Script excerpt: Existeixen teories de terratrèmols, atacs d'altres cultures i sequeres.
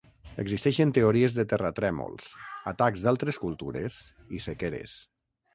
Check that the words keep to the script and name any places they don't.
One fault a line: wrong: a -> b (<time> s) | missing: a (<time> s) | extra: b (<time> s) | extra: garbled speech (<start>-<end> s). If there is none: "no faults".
no faults